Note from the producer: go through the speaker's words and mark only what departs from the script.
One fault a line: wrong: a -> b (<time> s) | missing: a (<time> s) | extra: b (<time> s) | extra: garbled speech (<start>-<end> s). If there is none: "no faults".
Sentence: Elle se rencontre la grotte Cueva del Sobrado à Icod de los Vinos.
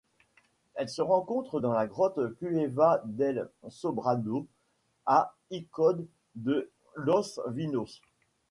extra: dans (1.6 s)